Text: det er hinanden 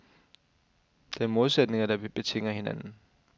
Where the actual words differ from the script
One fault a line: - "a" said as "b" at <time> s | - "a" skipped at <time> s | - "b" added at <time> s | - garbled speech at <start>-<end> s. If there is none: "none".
- "modsætninger der betinger" added at 1.3 s